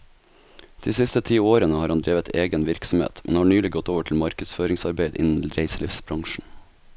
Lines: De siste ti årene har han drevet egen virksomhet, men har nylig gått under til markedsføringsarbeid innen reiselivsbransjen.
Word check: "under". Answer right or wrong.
wrong